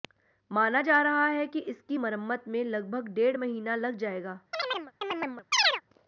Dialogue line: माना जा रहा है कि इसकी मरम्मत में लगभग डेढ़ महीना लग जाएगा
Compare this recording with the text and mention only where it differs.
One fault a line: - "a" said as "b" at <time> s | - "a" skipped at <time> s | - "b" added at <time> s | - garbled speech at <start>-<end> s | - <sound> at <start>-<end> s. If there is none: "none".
- chirp at 4.5-5.8 s